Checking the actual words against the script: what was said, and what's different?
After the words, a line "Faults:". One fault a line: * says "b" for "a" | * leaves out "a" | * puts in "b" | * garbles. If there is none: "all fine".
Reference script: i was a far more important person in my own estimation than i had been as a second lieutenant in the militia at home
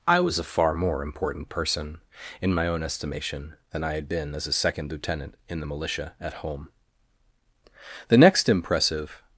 i was a far more important person in my own estimation than i had been as a second lieutenant in the militia at home the next impressive
Faults:
* puts in "the next impressive"